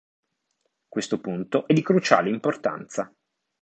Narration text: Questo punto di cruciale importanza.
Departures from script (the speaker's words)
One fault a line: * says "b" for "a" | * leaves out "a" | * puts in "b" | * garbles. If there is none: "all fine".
all fine